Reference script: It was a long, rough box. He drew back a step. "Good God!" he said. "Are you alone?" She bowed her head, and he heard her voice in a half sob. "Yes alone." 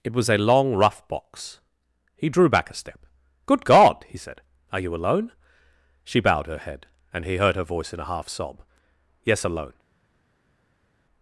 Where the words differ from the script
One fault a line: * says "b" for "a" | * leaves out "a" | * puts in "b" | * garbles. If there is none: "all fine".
all fine